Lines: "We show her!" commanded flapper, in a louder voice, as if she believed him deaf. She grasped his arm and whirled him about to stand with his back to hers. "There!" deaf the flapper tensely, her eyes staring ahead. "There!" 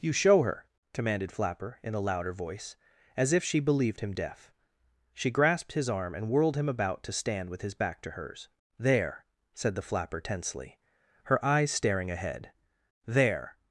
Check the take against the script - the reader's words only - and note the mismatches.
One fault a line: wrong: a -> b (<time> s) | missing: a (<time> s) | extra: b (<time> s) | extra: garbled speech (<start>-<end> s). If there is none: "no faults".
wrong: We -> You (0.0 s)
wrong: deaf -> said (9.5 s)